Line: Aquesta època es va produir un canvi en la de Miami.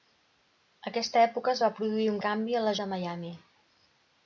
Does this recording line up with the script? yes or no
yes